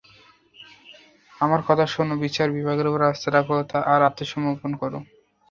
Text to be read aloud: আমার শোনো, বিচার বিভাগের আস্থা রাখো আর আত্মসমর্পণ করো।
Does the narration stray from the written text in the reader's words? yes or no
yes